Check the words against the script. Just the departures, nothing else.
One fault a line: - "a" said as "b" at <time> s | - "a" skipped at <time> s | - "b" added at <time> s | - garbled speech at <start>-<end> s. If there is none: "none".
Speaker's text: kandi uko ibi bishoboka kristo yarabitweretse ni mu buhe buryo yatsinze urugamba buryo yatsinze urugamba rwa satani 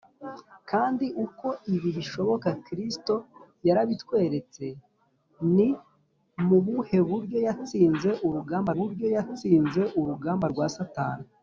none